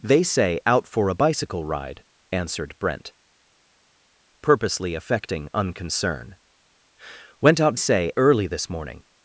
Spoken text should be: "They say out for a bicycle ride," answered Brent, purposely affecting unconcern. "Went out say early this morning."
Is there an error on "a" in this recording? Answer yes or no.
no